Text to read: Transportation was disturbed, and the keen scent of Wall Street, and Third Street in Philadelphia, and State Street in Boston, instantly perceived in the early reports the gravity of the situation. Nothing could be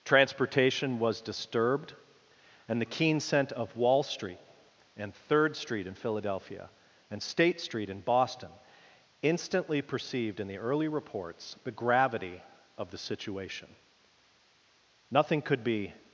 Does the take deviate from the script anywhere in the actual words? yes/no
no